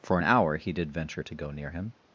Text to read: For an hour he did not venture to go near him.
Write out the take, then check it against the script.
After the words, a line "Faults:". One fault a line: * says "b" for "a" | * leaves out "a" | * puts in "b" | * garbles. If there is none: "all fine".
For an hour he did venture to go near him.
Faults:
* leaves out "not"